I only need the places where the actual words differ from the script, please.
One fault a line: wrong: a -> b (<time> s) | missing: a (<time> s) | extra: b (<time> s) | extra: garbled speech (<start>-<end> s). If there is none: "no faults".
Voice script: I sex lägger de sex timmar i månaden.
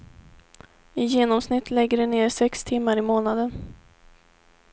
wrong: sex -> genomsnitt (1.1 s)
extra: ner (2.1 s)